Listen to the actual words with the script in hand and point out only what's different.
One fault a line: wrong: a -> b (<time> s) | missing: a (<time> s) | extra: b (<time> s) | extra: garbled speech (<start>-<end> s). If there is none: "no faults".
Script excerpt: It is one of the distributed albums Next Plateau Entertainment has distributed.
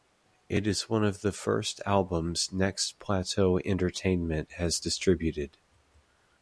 wrong: distributed -> first (1.3 s)